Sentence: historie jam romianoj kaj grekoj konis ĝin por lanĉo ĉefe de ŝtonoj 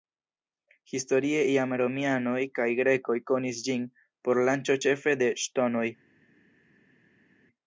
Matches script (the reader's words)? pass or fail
pass